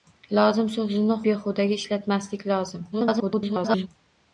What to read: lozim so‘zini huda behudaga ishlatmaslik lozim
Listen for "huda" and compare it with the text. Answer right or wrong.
wrong